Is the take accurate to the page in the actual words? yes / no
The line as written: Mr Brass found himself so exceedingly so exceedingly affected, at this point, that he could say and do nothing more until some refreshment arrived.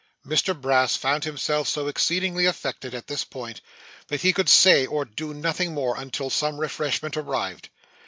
no